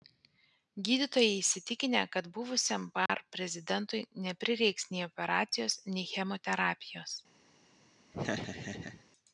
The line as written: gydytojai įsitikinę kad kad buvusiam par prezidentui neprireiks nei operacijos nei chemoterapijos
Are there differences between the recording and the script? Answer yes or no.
yes